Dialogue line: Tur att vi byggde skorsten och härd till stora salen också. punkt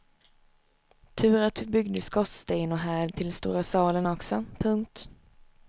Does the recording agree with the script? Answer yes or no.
yes